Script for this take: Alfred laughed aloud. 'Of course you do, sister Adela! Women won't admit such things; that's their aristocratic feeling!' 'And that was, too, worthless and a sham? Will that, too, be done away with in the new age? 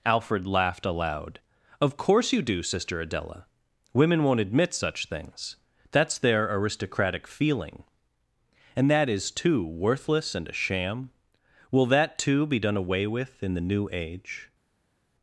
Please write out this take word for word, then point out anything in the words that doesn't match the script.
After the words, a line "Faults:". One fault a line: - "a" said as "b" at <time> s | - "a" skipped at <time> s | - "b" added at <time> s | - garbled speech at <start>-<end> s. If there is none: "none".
Alfred laughed aloud. 'Of course you do, sister Adela! Women won't admit such things; that's their aristocratic feeling!' 'And that is, too, worthless and a sham? Will that, too, be done away with in the new age?
Faults:
- "was" said as "is" at 9.1 s